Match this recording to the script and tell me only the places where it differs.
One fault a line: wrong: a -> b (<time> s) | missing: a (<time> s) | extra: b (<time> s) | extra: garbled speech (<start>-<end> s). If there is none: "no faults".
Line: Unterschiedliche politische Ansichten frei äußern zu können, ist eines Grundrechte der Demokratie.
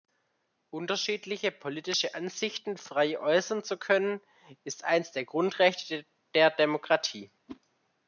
extra: der (5.1 s)